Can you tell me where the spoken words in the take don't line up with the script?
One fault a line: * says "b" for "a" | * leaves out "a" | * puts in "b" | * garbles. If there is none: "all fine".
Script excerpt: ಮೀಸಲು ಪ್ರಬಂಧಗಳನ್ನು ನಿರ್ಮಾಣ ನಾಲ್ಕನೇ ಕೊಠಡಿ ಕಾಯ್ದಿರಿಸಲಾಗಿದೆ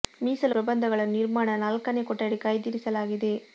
all fine